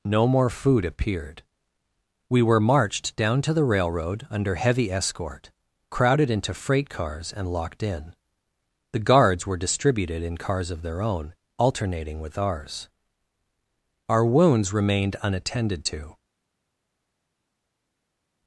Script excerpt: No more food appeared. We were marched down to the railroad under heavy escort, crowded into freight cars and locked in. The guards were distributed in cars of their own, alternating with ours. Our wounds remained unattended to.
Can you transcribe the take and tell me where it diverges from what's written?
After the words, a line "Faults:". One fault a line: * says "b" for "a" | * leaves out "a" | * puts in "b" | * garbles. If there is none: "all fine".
No more food appeared. We were marched down to the railroad under heavy escort, crowded into freight cars and locked in. The guards were distributed in cars of their own, alternating with ours. Our wounds remained unattended to.
Faults:
all fine